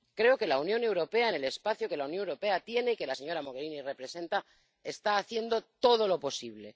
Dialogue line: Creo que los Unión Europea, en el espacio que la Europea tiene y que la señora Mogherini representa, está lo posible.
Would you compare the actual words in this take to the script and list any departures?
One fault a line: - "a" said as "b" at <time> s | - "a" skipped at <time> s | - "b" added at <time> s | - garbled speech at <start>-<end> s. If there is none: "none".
- "los" said as "la" at 0.5 s
- "Unión" added at 2.1 s
- "haciendo todo" added at 5.2 s